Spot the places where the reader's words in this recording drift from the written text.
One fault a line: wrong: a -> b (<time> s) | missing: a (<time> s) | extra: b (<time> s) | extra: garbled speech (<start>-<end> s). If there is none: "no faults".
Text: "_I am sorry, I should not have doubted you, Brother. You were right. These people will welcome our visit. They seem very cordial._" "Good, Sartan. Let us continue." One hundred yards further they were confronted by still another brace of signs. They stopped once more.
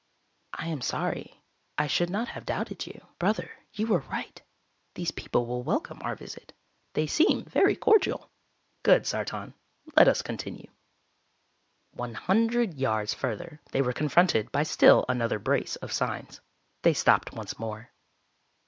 no faults